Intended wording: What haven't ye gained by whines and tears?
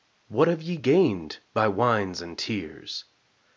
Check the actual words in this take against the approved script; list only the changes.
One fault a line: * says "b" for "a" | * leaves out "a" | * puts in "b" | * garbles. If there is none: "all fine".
* says "have" for "haven't"